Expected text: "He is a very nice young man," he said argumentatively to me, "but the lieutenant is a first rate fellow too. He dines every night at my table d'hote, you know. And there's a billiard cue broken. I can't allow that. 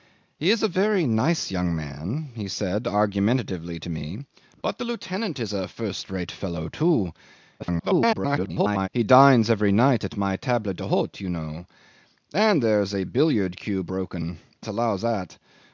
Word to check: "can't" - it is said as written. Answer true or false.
false